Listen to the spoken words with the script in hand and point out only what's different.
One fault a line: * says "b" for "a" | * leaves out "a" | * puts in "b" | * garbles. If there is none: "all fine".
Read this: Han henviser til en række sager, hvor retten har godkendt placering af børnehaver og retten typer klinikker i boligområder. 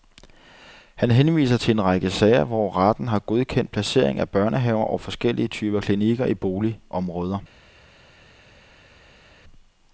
* says "forskellige" for "retten"